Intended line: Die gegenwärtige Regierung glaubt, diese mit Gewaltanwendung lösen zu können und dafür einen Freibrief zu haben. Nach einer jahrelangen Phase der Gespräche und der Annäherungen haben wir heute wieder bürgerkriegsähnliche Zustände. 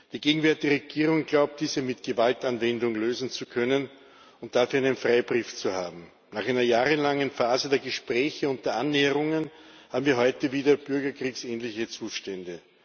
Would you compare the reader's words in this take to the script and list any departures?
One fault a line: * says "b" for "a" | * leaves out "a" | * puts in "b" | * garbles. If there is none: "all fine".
all fine